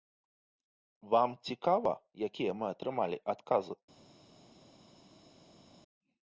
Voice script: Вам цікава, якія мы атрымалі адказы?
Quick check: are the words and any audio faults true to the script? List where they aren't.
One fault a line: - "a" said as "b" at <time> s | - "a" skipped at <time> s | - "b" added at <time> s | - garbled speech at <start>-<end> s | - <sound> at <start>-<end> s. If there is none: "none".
none